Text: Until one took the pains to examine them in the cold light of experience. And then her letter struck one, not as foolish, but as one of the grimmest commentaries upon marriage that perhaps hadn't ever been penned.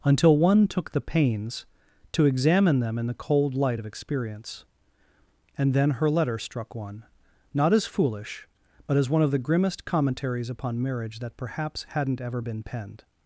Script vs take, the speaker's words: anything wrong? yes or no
no